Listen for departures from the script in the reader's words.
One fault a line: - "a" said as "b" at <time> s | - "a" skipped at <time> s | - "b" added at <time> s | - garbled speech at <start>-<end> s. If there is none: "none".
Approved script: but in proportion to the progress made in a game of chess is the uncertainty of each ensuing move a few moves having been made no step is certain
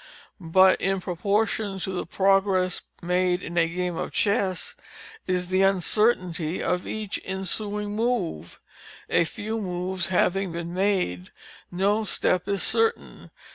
none